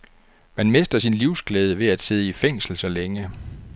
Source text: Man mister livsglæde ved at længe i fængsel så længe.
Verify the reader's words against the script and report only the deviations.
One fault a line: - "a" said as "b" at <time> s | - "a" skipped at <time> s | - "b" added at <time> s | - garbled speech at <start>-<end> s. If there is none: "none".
- "sin" added at 1.0 s
- "længe" said as "sidde" at 2.0 s